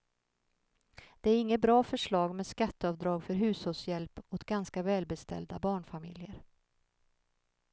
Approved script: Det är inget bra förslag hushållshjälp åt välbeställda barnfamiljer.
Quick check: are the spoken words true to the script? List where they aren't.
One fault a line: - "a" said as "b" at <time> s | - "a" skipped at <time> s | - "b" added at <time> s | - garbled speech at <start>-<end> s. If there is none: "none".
- "med skatteavdrag för" added at 2.4 s
- "ganska" added at 4.4 s